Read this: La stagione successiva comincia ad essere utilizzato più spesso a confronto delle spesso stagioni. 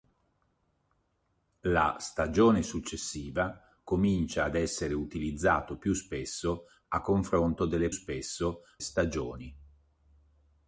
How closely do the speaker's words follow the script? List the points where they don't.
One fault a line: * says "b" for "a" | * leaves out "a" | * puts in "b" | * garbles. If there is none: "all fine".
all fine